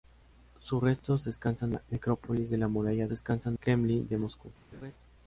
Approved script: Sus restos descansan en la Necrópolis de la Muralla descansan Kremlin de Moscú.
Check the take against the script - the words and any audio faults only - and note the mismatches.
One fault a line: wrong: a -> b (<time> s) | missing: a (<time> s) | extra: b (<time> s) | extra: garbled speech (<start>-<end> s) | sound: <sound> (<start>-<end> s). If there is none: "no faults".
sound: laugh (4.7-4.9 s)